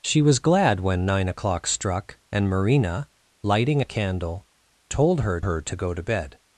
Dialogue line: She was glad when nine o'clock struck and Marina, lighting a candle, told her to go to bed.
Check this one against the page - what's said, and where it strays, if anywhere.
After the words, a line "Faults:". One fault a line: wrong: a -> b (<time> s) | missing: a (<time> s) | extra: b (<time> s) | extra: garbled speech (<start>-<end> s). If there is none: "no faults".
She was glad when nine o'clock struck and Marina, lighting a candle, told her her to go to bed.
Faults:
extra: her (5.4 s)